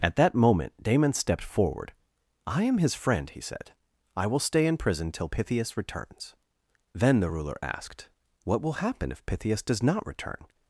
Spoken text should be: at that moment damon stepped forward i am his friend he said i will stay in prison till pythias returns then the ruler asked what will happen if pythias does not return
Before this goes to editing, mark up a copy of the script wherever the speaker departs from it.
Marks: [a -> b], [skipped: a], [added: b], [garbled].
at that moment damon stepped forward i am his friend he said i will stay in prison till pythias returns then the ruler asked what will happen if pythias does not return